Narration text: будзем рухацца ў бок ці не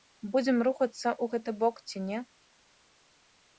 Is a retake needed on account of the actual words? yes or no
yes